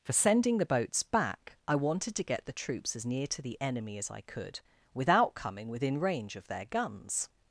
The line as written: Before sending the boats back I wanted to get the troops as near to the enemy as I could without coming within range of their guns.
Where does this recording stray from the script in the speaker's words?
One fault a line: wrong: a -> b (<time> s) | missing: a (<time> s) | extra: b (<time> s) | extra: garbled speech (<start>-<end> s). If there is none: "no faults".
wrong: Before -> For (0.0 s)